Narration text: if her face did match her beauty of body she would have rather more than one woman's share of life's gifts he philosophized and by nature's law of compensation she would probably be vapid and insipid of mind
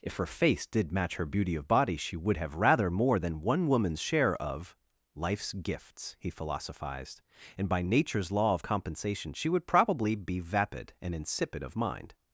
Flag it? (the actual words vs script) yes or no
no